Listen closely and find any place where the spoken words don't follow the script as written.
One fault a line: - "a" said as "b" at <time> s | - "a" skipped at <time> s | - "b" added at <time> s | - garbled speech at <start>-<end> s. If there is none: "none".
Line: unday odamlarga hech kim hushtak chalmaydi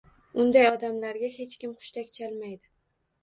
none